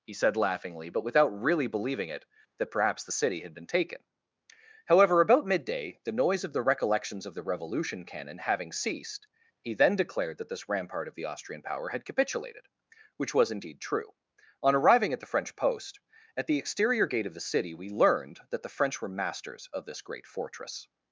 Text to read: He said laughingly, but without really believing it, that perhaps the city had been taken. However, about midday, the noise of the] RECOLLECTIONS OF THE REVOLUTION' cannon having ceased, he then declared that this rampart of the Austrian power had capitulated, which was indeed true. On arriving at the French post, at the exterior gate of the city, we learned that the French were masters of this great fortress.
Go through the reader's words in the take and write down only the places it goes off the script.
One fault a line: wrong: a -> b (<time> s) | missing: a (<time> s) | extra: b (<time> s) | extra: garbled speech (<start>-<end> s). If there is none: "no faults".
no faults